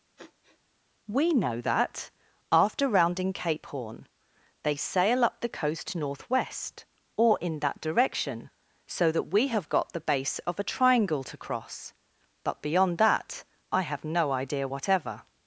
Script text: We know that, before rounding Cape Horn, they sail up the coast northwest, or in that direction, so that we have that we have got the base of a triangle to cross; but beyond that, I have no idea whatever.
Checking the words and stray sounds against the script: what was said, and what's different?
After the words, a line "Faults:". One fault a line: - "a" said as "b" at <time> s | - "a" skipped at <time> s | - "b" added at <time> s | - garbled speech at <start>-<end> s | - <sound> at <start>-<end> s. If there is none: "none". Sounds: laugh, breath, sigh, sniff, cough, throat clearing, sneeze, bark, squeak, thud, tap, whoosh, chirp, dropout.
We know that, after rounding Cape Horn, they sail up the coast northwest, or in that direction, so that we have got the base of a triangle to cross; but beyond that, I have no idea whatever.
Faults:
- sniff at 0.2-0.6 s
- "before" said as "after" at 2.5 s
- "that we have" skipped at 9.7 s